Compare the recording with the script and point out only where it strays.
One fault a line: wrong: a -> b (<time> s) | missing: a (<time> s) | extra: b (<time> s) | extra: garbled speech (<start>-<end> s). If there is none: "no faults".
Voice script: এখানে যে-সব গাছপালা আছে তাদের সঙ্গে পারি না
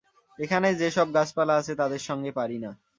no faults